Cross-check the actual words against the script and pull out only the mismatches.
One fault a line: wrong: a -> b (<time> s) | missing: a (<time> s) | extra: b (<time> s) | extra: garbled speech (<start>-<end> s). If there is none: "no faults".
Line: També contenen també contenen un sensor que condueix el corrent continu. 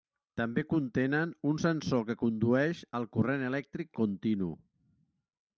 missing: també contenen (1.3 s)
extra: elèctric (3.5 s)